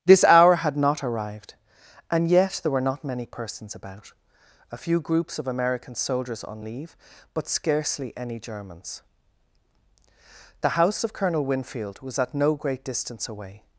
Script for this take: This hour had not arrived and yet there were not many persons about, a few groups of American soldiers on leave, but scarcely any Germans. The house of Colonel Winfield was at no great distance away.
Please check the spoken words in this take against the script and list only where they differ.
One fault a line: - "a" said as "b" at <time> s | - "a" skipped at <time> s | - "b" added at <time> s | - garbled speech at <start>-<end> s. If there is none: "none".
none